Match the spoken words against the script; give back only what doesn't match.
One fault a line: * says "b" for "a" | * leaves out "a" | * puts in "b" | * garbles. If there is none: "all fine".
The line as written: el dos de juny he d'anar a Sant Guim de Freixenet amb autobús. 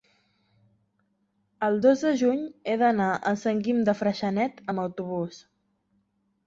all fine